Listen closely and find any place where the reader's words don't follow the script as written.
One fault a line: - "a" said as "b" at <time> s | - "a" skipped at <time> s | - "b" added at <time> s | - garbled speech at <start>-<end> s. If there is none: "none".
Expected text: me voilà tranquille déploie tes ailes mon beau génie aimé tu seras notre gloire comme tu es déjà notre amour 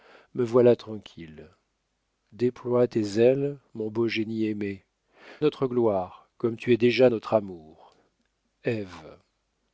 - "tu seras" skipped at 4.8 s